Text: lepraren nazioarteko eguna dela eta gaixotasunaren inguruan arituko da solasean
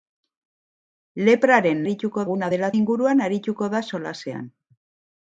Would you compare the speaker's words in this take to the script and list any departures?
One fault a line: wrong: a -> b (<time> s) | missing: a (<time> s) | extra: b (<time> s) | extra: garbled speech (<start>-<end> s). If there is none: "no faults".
wrong: nazioarteko -> arituko (1.8 s)
missing: eta gaixotasunaren (2.7 s)